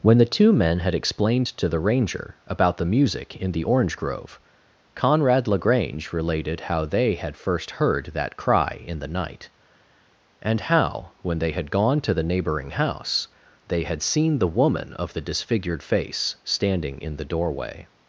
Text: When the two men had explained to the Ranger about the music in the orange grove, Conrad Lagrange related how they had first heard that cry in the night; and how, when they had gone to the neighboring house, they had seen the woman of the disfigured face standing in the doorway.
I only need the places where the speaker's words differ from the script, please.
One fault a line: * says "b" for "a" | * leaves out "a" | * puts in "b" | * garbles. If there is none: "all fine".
all fine